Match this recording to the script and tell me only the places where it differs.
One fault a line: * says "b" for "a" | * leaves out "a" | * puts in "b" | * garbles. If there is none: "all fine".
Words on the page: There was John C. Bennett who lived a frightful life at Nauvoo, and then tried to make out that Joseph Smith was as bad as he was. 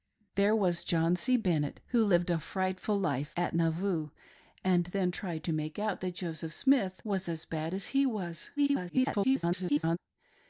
* garbles